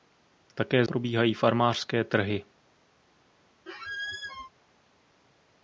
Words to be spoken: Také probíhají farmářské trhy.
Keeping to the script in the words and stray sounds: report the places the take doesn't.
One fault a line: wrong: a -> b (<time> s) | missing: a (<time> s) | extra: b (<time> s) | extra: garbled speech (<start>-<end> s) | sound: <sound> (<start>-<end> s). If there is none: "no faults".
sound: squeak (3.7-4.5 s)